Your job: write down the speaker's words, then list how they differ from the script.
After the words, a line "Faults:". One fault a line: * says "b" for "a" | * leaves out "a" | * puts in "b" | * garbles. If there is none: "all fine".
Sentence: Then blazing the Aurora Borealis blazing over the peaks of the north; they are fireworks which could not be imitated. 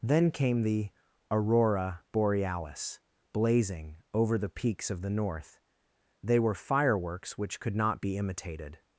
Then came the Aurora Borealis blazing over the peaks of the north; they were fireworks which could not be imitated.
Faults:
* says "came" for "blazing"
* says "were" for "are"